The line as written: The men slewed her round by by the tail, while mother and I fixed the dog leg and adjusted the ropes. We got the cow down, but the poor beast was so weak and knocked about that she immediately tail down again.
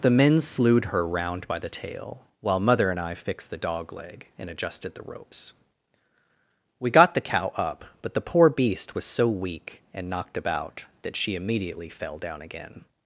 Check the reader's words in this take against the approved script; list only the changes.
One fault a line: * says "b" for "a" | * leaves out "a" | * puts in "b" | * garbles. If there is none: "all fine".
* leaves out "by"
* says "up" for "down"
* says "fell" for "tail"